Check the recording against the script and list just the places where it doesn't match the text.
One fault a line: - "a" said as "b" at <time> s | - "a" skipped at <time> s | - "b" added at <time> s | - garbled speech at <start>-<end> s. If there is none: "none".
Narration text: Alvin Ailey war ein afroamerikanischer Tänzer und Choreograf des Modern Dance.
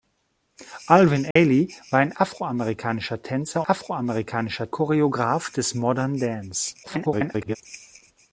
- "und" said as "afroamerikanischer" at 3.7 s
- garbled speech at 6.8-7.6 s